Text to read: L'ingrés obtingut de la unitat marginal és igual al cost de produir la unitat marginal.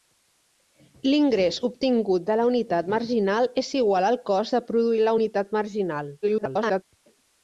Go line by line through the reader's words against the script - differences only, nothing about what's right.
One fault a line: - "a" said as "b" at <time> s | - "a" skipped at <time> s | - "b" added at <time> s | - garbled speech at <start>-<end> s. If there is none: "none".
- garbled speech at 6.2-6.8 s